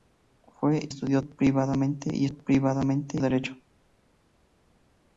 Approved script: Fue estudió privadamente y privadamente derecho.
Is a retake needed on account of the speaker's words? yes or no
no